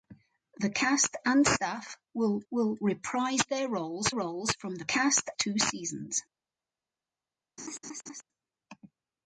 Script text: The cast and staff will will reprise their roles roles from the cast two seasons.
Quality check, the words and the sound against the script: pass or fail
fail